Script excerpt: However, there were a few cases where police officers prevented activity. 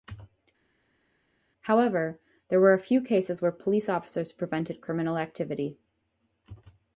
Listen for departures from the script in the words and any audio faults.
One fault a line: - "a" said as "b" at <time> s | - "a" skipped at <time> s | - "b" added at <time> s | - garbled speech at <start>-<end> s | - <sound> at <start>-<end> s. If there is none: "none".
- "criminal" added at 4.8 s